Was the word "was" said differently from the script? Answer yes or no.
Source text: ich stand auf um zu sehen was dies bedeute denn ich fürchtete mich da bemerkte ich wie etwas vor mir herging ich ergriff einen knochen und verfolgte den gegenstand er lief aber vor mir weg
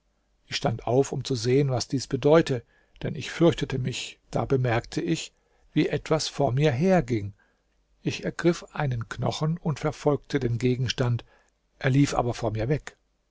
no